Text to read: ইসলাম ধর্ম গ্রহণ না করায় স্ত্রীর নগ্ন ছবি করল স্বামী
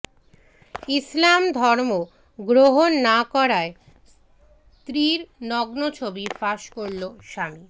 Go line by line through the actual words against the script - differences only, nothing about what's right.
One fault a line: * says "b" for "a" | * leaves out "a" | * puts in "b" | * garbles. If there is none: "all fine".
* puts in "ফাঁস"